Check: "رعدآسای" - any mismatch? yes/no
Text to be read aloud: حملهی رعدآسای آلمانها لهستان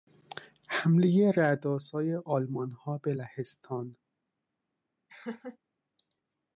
no